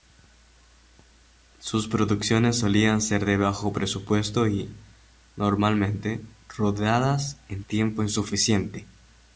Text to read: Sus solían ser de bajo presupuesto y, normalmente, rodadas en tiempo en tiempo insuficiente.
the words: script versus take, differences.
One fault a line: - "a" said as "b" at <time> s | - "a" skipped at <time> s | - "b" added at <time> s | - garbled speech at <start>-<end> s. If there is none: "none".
- "producciones" added at 1.9 s
- "en tiempo" skipped at 8.0 s